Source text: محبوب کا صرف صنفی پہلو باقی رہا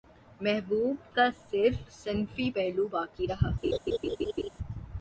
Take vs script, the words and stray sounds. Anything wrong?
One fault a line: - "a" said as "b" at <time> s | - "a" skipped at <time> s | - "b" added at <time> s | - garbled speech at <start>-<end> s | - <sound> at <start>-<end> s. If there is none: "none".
- laugh at 3.6-4.5 s